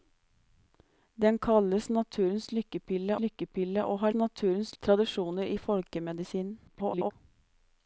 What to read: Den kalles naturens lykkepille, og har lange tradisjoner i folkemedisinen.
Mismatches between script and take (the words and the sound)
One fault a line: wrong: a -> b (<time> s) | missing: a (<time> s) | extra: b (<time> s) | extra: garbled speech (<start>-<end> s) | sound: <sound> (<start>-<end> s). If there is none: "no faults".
extra: lykkepille (3.2 s)
wrong: lange -> naturens (4.1 s)
extra: garbled speech (6.7-7.1 s)